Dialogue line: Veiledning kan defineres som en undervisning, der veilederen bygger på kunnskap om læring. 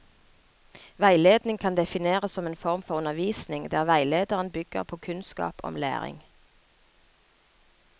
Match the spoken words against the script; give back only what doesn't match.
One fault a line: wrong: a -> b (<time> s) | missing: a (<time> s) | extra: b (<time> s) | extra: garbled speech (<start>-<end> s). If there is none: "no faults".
extra: form for (2.5 s)